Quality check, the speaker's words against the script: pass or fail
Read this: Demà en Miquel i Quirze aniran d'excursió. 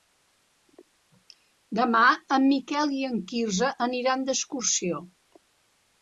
fail